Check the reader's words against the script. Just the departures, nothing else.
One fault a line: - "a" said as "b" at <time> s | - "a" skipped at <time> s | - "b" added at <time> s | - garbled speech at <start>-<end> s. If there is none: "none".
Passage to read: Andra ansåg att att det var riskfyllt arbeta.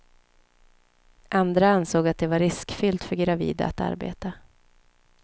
- "att" skipped at 2.2 s
- "för gravida att" added at 3.0 s